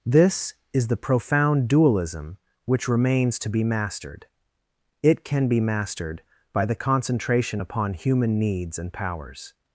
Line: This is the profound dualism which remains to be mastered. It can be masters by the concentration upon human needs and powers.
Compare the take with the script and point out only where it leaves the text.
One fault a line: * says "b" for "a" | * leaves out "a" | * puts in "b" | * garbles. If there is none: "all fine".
* says "mastered" for "masters"